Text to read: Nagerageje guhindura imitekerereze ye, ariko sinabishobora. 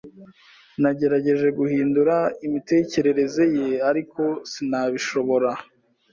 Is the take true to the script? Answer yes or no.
yes